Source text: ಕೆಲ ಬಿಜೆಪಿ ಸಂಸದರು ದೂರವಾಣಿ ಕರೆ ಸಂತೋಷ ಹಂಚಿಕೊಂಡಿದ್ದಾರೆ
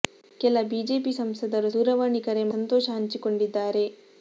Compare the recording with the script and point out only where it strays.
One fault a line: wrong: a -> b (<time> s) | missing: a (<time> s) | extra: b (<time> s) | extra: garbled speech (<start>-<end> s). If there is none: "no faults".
no faults